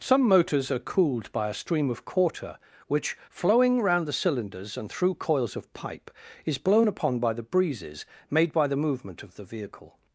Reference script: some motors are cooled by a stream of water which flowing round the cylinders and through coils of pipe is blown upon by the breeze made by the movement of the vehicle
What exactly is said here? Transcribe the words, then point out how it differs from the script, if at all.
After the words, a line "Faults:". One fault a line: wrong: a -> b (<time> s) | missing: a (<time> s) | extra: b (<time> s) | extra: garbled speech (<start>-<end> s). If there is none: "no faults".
some motors are cooled by a stream of quarter which flowing round the cylinders and through coils of pipe is blown upon by the breezes made by the movement of the vehicle
Faults:
wrong: water -> quarter (2.0 s)
wrong: breeze -> breezes (7.4 s)